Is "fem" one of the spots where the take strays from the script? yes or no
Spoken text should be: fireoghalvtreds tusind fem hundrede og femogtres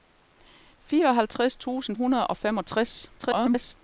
yes